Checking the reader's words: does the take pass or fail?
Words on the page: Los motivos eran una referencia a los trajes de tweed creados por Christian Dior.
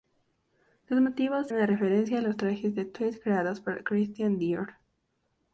fail